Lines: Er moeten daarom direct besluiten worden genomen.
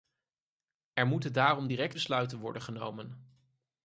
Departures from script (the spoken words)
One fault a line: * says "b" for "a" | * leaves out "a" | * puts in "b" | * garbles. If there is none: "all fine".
all fine